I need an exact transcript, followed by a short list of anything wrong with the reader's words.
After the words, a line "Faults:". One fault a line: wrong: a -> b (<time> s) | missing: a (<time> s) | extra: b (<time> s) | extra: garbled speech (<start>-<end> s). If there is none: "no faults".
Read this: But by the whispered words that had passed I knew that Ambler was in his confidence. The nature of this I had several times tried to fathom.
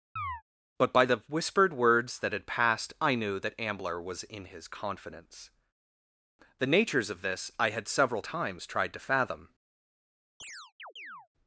But by the whispered words that had passed I knew that Ambler was in his confidence. The natures of this I had several times tried to fathom.
Faults:
wrong: nature -> natures (6.7 s)